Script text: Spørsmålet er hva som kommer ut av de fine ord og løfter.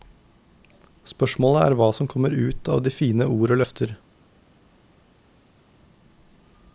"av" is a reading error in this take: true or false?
false